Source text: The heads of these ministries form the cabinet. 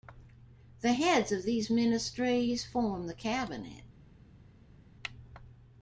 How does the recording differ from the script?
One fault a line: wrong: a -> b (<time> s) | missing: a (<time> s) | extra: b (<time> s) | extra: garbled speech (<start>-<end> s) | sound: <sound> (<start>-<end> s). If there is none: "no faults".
no faults